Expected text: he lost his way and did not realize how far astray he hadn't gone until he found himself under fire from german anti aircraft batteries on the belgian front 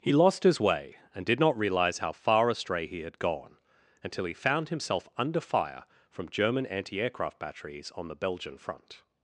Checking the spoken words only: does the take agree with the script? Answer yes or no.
no